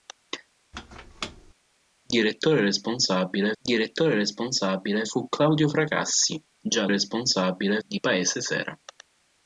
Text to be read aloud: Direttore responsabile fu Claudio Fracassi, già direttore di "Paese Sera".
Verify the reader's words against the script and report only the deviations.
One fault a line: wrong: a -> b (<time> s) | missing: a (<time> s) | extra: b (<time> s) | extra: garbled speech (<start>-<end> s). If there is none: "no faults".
extra: direttore responsabile (3.6 s)
wrong: direttore -> responsabile (6.9 s)